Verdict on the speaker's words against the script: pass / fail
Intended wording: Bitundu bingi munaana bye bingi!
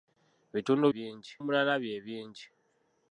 pass